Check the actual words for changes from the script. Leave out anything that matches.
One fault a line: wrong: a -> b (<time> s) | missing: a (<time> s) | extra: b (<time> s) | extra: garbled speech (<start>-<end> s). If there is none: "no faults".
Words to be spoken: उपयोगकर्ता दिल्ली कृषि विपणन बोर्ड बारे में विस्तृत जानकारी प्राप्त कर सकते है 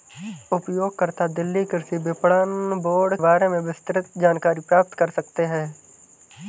no faults